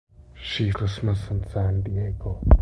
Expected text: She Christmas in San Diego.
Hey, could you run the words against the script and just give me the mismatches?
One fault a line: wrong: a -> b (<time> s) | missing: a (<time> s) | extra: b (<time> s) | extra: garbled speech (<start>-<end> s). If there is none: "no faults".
no faults